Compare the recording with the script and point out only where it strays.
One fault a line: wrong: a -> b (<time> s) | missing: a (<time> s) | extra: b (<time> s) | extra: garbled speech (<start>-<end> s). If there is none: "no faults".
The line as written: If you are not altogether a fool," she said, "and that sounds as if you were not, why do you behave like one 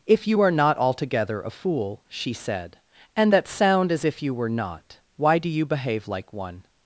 wrong: sounds -> sound (3.5 s)